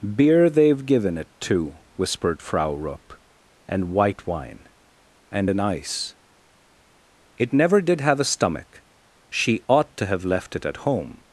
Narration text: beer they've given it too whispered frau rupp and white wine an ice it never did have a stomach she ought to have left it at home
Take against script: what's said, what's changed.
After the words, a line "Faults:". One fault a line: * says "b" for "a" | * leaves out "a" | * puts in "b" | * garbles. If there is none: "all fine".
beer they've given it too whispered frau rupp and white wine and an ice it never did have a stomach she ought to have left it at home
Faults:
* puts in "and"